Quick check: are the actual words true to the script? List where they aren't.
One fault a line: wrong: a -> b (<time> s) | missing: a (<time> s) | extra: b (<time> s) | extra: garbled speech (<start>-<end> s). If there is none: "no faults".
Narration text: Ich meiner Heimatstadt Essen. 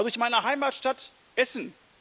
no faults